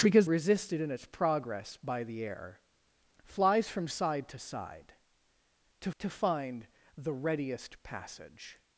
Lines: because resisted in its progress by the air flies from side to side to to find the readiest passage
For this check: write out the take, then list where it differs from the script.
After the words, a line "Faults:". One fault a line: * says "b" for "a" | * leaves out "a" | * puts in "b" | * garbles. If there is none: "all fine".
because resisted in its progress by the air flies from side to side to to find the readiest passage
Faults:
all fine